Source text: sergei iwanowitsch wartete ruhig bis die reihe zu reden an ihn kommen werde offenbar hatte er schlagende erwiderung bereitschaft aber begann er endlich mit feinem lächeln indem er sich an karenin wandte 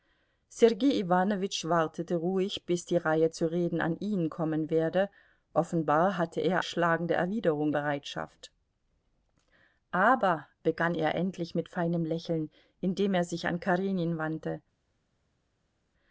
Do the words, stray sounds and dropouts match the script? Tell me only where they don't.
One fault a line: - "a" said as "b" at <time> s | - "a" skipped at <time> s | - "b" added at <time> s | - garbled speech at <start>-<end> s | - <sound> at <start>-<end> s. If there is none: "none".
none